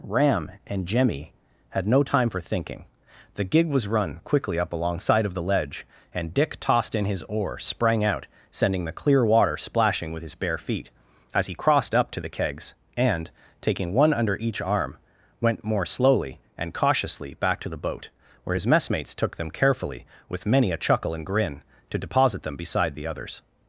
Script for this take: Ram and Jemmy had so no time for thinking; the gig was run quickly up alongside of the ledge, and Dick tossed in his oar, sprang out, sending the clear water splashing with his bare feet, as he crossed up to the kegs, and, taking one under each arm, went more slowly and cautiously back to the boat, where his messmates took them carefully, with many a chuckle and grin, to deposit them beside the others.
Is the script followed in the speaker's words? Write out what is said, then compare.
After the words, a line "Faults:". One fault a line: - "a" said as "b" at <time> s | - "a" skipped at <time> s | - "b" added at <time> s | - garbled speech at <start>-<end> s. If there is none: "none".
Ram and Jemmy had no time for thinking; the gig was run quickly up alongside of the ledge, and Dick tossed in his oar, sprang out, sending the clear water splashing with his bare feet, as he crossed up to the kegs, and, taking one under each arm, went more slowly and cautiously back to the boat, where his messmates took them carefully, with many a chuckle and grin, to deposit them beside the others.
Faults:
- "so" skipped at 1.9 s